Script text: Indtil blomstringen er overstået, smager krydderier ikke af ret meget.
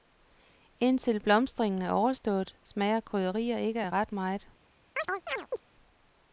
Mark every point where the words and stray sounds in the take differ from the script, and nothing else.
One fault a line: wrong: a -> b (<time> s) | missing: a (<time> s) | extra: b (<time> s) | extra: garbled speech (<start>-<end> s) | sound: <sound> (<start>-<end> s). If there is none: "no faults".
sound: chirp (5.0-5.6 s)